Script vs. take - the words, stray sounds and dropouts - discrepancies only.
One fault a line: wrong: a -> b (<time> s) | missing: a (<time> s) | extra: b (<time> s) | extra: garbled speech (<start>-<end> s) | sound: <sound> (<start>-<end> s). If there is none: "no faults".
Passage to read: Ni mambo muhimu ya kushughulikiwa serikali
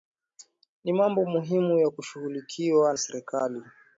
no faults